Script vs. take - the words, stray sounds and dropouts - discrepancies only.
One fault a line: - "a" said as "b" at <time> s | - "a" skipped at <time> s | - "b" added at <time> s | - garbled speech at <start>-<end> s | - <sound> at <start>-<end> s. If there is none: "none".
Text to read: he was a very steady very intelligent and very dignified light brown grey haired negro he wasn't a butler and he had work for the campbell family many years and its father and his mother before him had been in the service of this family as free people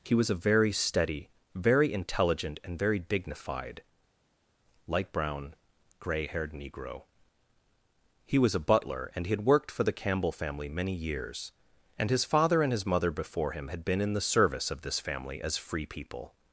- "wasn't" said as "was" at 8.4 s
- "work" said as "worked" at 9.4 s
- "its" said as "his" at 12.1 s